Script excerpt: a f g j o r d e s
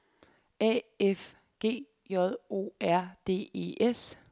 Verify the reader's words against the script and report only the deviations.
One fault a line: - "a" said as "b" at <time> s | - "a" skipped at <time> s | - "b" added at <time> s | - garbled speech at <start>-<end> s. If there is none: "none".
none